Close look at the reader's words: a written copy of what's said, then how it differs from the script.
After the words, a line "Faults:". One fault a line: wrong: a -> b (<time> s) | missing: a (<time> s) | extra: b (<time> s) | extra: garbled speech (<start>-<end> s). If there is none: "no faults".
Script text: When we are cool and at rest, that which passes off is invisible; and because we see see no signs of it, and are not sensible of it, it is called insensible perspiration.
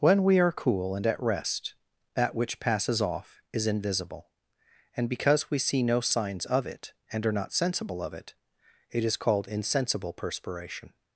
When we are cool and at rest, that which passes off is invisible; and because we see no signs of it, and are not sensible of it, it is called insensible perspiration.
Faults:
missing: see (5.8 s)